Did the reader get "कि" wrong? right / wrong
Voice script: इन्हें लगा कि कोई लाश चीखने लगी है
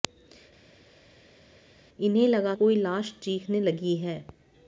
wrong